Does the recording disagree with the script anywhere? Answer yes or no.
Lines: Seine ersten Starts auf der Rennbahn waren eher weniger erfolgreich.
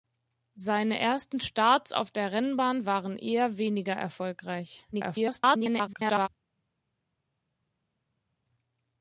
yes